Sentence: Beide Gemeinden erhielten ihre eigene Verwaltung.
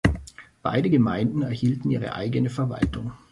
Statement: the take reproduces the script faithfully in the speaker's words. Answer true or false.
true